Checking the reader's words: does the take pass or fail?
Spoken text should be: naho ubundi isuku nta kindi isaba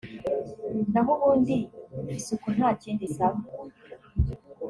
pass